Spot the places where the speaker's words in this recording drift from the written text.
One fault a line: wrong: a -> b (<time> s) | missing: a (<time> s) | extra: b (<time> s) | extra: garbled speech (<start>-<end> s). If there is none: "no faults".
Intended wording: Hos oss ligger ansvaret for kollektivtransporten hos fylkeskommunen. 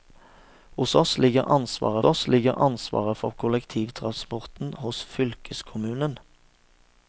extra: oss ligger ansvaret (2.0 s)